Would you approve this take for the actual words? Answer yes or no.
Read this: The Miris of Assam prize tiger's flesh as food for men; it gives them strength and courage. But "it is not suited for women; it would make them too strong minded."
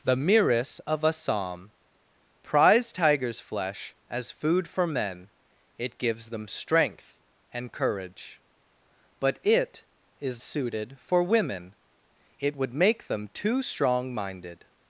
no